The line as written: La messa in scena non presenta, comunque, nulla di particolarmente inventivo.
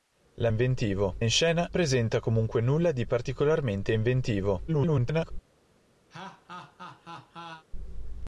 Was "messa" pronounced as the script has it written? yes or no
no